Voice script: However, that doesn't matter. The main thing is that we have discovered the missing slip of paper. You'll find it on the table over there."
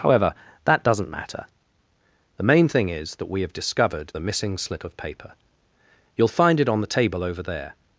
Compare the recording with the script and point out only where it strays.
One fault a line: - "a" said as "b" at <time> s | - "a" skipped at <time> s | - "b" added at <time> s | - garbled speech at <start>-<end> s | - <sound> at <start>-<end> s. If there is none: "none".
none